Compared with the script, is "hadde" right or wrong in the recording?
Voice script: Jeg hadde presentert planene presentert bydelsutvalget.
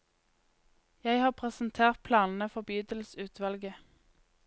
wrong